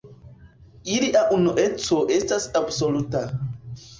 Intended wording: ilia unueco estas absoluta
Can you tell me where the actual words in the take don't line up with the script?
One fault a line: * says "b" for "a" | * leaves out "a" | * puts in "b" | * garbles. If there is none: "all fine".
all fine